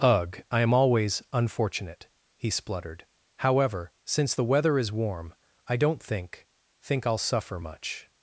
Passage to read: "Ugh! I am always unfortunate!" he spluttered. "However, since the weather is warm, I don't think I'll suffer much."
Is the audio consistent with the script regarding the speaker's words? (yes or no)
no